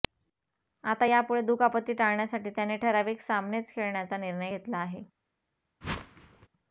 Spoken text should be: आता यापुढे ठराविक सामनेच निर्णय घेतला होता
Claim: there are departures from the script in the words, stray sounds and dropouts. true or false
true